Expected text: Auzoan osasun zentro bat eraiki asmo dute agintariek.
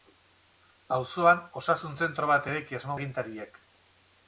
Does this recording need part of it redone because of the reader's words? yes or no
yes